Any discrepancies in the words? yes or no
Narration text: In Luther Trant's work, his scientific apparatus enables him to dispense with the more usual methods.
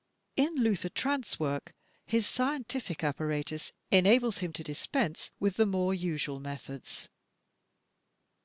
no